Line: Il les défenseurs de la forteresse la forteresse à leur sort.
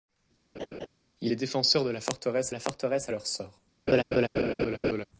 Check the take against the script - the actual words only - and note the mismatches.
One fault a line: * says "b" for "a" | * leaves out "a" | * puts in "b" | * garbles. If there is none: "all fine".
all fine